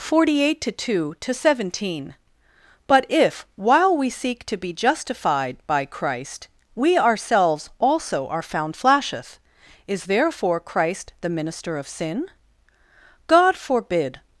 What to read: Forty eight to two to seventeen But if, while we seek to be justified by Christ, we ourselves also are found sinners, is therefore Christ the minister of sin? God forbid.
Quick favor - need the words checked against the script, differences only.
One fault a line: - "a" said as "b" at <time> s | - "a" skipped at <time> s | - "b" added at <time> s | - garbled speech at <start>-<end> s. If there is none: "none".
- "sinners" said as "flasheth" at 8.8 s